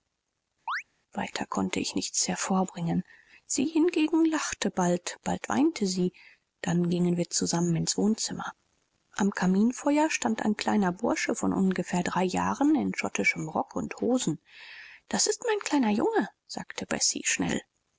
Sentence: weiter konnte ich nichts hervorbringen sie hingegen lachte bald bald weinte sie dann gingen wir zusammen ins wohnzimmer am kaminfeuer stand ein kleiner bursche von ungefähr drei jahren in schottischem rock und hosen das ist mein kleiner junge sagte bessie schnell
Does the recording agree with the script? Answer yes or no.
yes